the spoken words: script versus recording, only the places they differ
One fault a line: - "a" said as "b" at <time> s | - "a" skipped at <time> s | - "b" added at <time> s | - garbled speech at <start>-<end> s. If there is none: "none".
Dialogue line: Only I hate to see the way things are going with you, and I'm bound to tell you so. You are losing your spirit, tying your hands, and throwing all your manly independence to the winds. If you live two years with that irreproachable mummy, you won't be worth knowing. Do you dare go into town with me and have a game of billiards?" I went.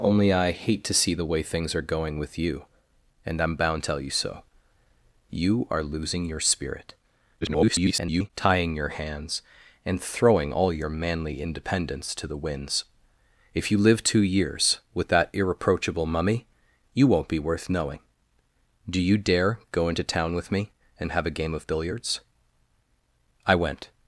- "to" skipped at 3.8 s
- garbled speech at 7.4-8.3 s